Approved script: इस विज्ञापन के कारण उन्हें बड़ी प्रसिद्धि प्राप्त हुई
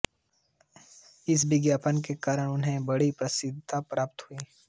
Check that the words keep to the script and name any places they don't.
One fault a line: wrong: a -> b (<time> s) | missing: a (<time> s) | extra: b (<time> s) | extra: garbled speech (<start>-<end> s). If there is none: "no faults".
no faults